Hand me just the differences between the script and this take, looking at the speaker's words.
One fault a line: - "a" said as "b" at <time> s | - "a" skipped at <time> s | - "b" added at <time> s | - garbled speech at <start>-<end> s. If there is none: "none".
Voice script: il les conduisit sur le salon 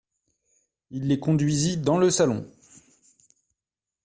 - "sur" said as "dans" at 1.7 s